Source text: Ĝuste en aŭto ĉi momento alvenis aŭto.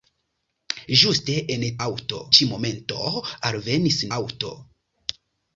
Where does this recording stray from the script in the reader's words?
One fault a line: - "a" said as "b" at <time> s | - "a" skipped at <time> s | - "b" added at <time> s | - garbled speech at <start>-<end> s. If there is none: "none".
none